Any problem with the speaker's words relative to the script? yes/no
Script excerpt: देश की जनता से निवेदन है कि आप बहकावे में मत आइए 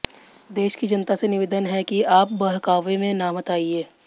no